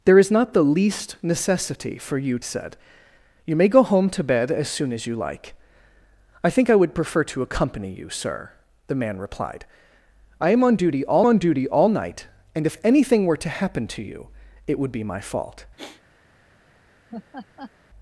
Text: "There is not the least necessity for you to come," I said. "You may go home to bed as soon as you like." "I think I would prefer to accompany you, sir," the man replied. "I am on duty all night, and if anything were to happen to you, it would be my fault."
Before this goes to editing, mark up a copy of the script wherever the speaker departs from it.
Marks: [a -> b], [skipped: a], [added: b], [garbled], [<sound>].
"There is not the least necessity for you [skipped: to come," I] said. "You may go home to bed as soon as you like." "I think I would prefer to accompany you, sir," the man replied. "I am on duty all [added: on duty all] night, and if anything were to happen to you, it would be my fault." [sigh] [laugh]